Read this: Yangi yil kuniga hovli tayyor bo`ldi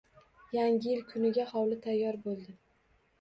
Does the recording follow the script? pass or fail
pass